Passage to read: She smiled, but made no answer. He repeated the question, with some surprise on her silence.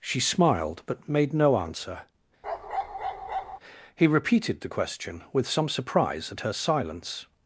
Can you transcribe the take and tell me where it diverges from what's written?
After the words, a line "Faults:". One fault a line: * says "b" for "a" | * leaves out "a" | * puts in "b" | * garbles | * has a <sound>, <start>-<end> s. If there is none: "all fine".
She smiled, but made no answer. He repeated the question, with some surprise at her silence.
Faults:
* has a bark, 2.4-3.6 s
* says "at" for "on"